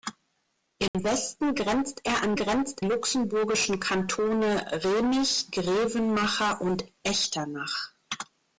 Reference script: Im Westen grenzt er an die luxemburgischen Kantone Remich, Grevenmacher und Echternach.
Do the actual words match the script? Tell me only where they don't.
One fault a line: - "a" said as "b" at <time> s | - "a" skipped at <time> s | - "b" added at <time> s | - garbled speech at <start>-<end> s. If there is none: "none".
- "die" said as "grenzt" at 2.3 s